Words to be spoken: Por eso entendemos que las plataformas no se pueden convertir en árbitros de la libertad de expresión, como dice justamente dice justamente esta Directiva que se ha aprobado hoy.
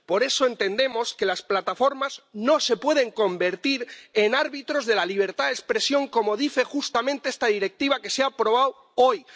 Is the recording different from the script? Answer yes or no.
yes